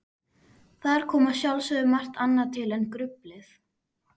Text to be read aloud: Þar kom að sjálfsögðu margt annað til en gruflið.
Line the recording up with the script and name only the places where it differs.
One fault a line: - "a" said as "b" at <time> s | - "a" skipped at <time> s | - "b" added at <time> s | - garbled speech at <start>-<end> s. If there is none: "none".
none